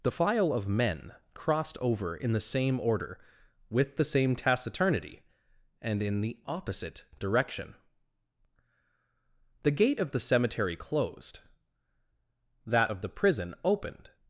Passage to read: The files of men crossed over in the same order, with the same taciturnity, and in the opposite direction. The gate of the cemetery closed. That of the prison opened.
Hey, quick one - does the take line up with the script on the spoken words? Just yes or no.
no